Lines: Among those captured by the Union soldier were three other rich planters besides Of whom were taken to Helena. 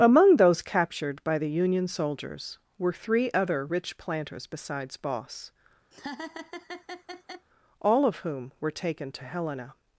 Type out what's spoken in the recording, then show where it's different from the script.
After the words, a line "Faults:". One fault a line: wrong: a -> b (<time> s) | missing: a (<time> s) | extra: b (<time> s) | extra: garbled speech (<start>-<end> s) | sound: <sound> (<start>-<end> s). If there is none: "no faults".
Among those captured by the Union soldiers were three other rich planters besides Boss, all of whom were taken to Helena.
Faults:
wrong: soldier -> soldiers (1.9 s)
extra: Boss all (4.9 s)
sound: laugh (5.9-7.5 s)